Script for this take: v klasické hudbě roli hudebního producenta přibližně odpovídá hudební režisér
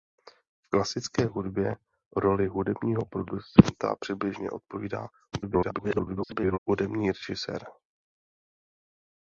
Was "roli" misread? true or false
false